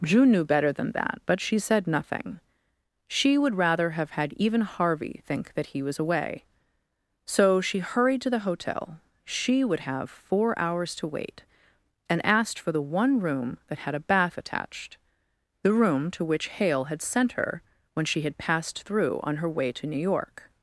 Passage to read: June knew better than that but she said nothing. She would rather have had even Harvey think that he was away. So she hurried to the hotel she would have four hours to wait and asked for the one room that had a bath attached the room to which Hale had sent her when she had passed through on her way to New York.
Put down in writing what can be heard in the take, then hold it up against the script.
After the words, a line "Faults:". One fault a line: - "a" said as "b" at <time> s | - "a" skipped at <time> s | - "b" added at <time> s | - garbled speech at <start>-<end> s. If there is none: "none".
June knew better than that but she said nothing. She would rather have had even Harvey think that he was away. So she hurried to the hotel she would have four hours to wait and asked for the one room that had a bath attached the room to which Hale had sent her when she had passed through on her way to New York.
Faults:
none